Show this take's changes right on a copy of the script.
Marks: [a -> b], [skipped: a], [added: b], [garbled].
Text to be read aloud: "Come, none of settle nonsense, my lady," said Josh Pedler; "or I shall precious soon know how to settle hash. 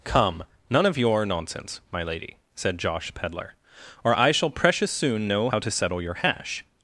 "Come, none of [settle -> your] nonsense, my lady," said Josh Pedler; "or I shall precious soon know how to settle [added: your] hash.